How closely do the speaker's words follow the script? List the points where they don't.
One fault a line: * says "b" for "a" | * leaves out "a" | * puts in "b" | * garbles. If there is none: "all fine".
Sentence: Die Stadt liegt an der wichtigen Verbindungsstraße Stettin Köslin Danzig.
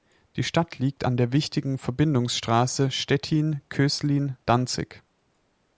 all fine